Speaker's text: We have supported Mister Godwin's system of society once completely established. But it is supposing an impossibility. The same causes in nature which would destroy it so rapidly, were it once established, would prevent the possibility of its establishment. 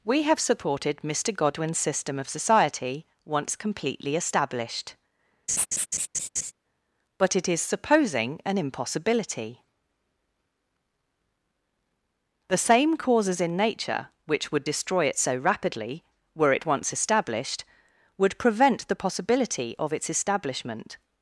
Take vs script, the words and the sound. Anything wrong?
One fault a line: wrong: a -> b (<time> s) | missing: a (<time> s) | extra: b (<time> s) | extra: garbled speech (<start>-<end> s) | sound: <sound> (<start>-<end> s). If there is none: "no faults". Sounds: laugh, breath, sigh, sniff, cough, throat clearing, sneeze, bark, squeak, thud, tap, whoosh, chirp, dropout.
sound: laugh (5.5-6.5 s)